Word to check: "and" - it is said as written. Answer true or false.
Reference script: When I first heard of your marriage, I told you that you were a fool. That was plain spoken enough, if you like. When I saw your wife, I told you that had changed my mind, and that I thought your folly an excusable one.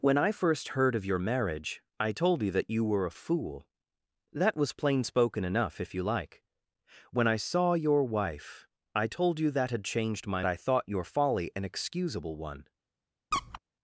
false